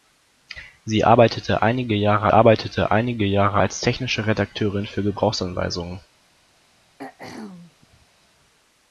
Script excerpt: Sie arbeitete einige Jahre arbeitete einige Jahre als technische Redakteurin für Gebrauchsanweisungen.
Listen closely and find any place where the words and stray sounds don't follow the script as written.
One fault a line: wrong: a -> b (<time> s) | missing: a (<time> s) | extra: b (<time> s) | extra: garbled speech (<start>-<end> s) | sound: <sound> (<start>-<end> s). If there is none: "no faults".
sound: throat clearing (7.0-8.1 s)